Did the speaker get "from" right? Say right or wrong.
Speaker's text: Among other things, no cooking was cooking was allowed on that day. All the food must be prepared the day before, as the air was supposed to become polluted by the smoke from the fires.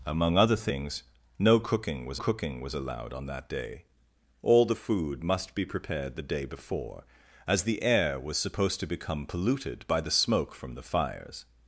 right